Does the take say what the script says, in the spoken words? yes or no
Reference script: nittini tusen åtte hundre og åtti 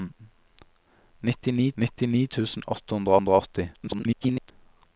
no